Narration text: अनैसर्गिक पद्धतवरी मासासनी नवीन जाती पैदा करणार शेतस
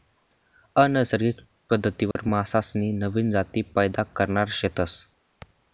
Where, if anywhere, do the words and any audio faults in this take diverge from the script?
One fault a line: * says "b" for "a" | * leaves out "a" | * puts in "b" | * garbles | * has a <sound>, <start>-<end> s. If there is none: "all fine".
* has a dropout, 2.1-2.2 s